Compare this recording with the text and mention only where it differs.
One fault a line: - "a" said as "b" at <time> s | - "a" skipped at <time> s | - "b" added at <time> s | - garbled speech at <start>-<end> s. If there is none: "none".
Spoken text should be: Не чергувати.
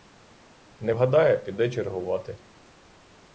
- "вгадає піде" added at 0.9 s